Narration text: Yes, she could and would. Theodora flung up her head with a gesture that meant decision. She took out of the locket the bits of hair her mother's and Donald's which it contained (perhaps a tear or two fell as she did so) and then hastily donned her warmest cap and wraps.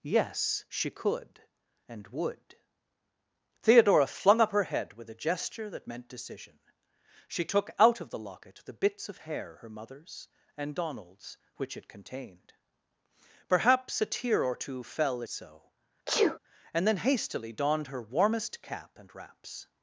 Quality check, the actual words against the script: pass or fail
fail